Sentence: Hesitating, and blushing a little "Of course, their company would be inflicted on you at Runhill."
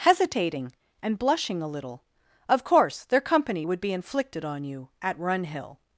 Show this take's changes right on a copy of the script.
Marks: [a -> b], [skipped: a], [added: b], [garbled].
Hesitating, and blushing a little "Of course, their company would be inflicted on you at Runhill."